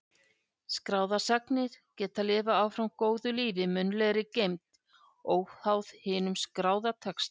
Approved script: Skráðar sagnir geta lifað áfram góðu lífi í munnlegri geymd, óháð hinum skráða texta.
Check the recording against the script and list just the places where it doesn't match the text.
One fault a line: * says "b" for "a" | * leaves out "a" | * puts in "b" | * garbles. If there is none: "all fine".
all fine